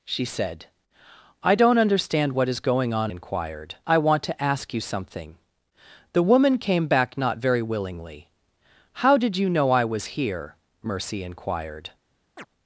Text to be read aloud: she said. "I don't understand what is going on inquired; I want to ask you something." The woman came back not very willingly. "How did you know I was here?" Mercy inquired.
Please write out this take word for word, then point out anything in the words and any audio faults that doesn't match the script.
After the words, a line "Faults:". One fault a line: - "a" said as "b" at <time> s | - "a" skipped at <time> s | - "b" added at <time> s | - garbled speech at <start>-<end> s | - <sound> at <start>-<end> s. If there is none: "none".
she said. "I don't understand what is going on inquired; I want to ask you something." The woman came back not very willingly. "How did you know I was here?" Mercy inquired.
Faults:
- chirp at 12.4-12.5 s